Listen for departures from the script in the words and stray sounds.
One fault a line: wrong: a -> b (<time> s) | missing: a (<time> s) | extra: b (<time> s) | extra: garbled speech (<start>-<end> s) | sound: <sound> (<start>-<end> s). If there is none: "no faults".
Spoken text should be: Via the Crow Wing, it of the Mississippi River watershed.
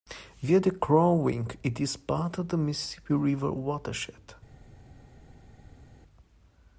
extra: is part (1.8 s)